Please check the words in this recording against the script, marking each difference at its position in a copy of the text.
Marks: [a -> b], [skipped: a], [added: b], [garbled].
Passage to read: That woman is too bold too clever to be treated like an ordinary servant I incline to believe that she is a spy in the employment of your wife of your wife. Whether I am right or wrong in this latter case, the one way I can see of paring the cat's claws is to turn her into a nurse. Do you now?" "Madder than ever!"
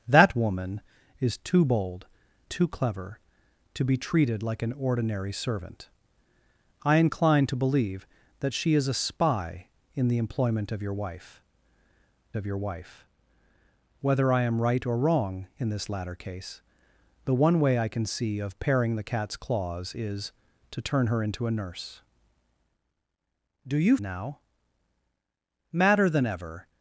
That woman is too bold too clever to be treated like an ordinary servant I incline to believe that she is a spy in the employment of your wife of your wife. Whether I am right or wrong in this latter case, the one way I can see of paring the cat's claws is to turn her into a nurse. Do you now?" "Madder than ever!"